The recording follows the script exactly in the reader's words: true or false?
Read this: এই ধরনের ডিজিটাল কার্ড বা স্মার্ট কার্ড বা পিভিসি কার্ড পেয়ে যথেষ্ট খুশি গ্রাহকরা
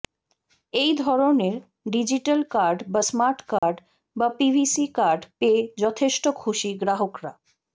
true